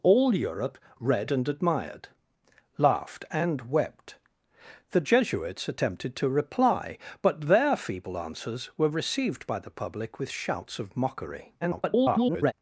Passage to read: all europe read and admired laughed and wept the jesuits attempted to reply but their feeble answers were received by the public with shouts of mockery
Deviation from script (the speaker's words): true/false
true